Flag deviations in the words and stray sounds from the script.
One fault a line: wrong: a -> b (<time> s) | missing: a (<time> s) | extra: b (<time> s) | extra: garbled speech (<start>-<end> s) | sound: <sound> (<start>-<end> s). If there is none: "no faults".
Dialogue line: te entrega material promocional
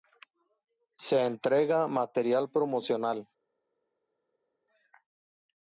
wrong: te -> se (1.0 s)